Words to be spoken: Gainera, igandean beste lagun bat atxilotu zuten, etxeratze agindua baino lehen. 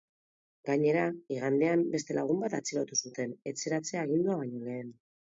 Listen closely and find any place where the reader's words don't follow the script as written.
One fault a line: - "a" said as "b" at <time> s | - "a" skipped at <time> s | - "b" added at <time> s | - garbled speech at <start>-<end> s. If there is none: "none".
none